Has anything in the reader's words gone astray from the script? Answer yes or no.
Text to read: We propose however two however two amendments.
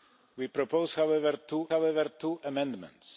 no